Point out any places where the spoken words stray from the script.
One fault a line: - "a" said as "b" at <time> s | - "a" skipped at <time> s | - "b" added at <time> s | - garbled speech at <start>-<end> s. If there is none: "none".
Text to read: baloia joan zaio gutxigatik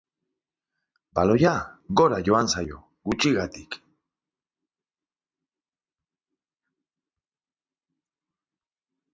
- "gora" added at 2.0 s